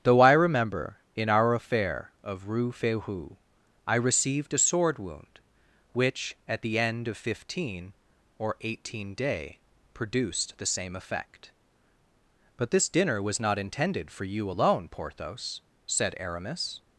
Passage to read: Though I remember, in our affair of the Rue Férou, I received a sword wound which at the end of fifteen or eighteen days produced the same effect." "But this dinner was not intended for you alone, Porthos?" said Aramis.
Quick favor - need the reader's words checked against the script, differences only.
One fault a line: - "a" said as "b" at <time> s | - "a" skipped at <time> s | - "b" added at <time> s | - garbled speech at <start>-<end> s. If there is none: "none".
- "the" skipped at 2.5 s
- "days" said as "day" at 9.1 s